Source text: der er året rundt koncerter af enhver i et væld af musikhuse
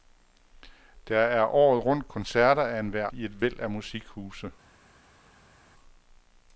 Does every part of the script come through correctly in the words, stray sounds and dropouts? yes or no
yes